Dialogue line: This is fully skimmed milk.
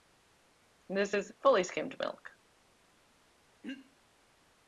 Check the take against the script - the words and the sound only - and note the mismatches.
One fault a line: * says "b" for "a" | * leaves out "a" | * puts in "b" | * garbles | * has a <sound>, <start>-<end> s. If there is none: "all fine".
* has a throat clearing, 3.6-4.0 s